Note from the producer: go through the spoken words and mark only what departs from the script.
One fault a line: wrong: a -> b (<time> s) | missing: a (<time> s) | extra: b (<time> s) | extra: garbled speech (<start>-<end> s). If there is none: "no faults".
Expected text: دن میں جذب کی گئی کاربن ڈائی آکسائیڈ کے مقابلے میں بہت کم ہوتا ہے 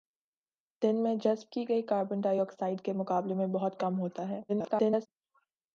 extra: garbled speech (4.5-5.1 s)